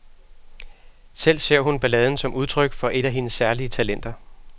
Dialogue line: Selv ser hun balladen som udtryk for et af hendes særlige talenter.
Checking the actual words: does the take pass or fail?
pass